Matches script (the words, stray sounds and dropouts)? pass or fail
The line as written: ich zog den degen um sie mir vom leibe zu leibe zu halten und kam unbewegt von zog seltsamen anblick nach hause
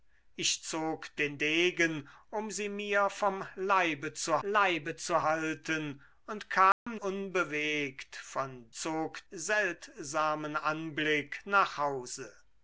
fail